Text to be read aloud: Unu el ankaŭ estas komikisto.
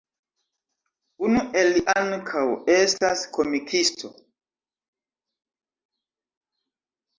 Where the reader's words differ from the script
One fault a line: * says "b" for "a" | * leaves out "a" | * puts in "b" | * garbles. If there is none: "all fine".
all fine